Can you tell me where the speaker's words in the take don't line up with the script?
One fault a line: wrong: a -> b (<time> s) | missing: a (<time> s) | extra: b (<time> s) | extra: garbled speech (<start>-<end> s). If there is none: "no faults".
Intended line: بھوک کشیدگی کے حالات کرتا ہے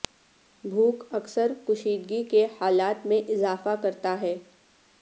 extra: اکثر (1.1 s)
extra: میں اضافہ (3.0 s)